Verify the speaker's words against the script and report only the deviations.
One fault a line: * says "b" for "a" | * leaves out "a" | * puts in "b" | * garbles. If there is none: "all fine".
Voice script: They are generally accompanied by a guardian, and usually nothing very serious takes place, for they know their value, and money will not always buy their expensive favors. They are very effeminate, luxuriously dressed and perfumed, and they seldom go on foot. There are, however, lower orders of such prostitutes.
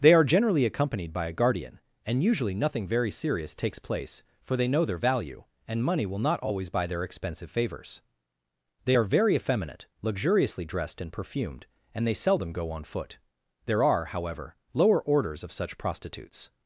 all fine